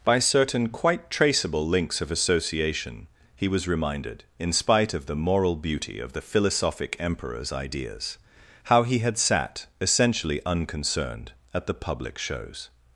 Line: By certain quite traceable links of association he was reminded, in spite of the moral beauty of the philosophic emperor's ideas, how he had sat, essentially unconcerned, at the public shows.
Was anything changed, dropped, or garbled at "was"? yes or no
no